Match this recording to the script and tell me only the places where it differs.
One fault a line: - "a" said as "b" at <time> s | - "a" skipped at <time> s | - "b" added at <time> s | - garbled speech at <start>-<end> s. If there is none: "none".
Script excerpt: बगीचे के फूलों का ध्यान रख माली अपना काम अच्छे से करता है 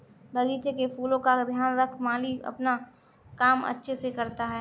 none